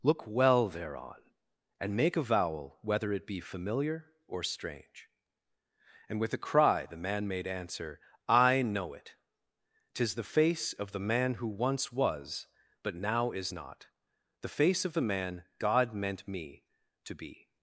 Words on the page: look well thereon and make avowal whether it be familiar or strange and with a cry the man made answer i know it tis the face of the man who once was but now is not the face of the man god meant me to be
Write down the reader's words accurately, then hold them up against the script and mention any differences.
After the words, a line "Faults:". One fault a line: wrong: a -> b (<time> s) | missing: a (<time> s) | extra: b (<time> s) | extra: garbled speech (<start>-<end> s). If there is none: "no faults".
look well thereon and make avowal whether it be familiar or strange and with a cry the man made answer i know it tis the face of the man who once was but now is not the face of the man god meant me to be
Faults:
no faults